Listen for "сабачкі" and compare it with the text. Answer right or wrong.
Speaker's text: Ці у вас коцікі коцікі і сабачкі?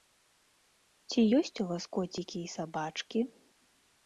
right